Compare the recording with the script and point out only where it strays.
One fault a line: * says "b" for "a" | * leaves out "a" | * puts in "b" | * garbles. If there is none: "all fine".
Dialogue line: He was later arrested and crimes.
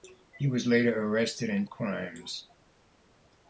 all fine